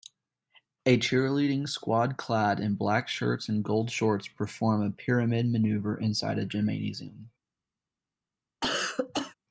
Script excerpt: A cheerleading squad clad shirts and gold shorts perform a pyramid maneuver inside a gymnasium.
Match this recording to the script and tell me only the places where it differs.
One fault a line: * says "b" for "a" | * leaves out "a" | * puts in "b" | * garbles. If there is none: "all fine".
* puts in "in black"